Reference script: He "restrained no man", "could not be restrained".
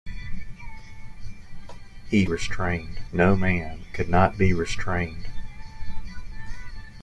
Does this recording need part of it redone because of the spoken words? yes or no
no